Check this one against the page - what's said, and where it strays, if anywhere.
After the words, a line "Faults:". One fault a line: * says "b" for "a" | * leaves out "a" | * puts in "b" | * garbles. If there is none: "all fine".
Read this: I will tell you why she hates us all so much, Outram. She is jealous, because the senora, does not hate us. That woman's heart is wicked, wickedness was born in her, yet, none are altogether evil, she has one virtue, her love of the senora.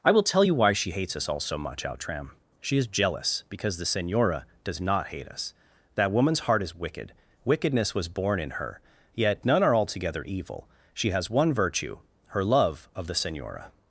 I will tell you why she hates us all so much, Outram. She is jealous, because the senora, does not hate us. That woman's heart is wicked, wickedness was born in her, yet, none are altogether evil, she has one virtue, her love of the senora.
Faults:
all fine